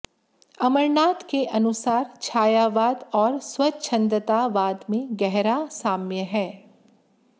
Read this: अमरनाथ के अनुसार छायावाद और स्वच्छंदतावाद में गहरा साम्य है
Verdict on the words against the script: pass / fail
pass